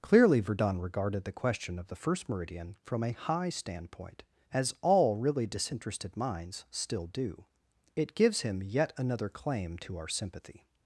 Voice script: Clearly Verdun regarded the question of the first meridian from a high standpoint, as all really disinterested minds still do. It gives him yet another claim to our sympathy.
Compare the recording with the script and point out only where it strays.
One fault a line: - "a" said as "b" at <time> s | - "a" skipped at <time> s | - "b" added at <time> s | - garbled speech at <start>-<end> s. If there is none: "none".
none